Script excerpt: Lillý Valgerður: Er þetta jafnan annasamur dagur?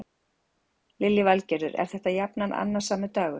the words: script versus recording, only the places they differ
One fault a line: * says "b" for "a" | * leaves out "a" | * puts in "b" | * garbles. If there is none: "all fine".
all fine